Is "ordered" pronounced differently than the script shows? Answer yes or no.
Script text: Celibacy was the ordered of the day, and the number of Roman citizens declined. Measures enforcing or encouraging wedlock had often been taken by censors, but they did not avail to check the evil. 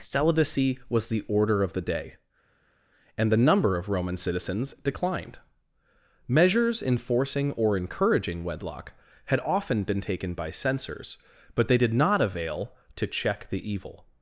yes